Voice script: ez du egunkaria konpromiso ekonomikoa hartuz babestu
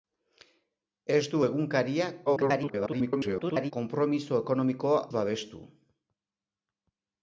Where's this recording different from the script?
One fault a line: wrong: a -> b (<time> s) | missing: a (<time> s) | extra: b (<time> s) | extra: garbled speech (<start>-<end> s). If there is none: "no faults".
extra: garbled speech (2.3-3.7 s)
missing: hartuz (5.0 s)